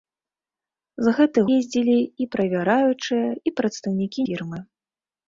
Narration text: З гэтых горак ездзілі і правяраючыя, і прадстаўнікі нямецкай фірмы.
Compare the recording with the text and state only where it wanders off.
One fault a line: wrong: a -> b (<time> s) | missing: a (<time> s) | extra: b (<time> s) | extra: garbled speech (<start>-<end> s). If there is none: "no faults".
missing: горак (1.4 s)
missing: нямецкай (4.2 s)